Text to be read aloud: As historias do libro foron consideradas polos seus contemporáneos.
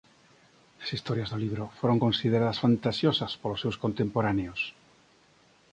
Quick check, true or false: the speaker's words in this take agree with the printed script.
false